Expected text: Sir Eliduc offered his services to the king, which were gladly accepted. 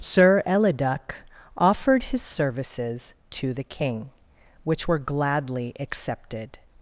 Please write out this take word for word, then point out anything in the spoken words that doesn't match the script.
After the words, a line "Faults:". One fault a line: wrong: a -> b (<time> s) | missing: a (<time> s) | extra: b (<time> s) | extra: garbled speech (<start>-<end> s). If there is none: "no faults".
Sir Eliduc offered his services to the king, which were gladly accepted.
Faults:
no faults